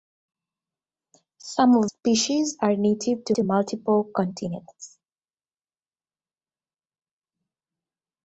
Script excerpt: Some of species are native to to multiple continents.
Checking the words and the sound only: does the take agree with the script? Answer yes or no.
yes